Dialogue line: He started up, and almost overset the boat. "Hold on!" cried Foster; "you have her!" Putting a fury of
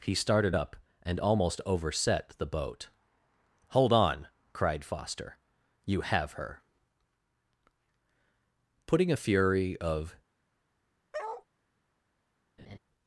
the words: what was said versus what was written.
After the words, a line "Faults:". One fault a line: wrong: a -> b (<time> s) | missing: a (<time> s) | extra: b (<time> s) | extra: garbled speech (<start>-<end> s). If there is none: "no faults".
He started up, and almost overset the boat. "Hold on!" cried Foster; "you have her!" Putting a fury of
Faults:
no faults